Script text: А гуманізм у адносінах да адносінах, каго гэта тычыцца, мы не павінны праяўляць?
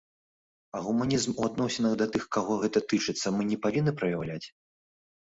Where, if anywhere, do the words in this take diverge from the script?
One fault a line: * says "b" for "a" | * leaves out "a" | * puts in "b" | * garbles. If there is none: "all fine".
* says "тых" for "адносінах"